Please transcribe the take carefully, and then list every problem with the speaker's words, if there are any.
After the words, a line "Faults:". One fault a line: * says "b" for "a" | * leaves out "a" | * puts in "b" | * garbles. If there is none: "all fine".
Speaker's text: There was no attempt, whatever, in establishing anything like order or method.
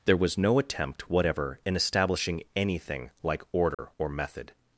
There was no attempt, whatever, in establishing anything like order or method.
Faults:
all fine